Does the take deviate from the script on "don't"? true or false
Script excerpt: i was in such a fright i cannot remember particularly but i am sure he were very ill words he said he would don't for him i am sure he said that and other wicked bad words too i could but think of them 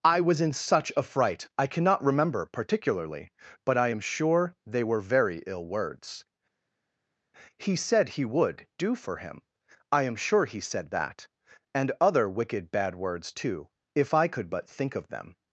true